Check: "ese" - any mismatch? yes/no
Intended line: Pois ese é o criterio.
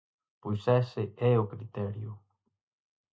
no